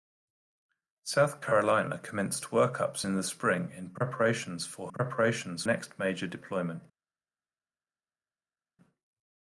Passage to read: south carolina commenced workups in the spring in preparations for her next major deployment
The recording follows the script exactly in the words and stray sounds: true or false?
false